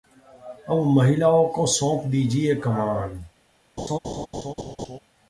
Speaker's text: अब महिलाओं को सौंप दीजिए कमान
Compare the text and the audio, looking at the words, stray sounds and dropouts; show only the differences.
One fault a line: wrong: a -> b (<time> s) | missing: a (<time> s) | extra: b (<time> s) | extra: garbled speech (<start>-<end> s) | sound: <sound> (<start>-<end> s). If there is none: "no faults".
sound: laugh (3.8-5.0 s)